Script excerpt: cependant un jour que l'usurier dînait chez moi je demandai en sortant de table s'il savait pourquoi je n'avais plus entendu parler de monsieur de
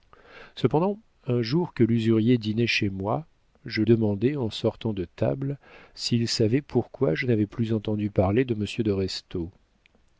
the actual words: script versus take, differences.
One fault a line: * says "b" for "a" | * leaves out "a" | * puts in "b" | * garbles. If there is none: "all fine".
all fine